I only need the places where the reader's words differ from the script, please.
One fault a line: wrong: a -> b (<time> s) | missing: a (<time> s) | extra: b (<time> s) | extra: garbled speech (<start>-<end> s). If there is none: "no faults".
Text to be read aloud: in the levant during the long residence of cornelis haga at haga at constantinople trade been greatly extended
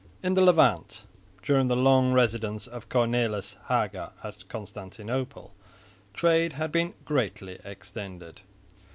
missing: haga at (4.5 s)
extra: had (6.5 s)